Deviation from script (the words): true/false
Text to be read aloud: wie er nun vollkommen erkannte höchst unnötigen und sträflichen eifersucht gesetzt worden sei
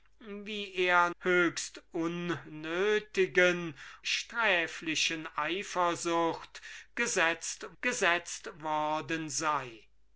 true